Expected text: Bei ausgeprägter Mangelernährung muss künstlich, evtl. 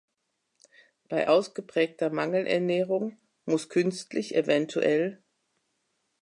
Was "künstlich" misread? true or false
false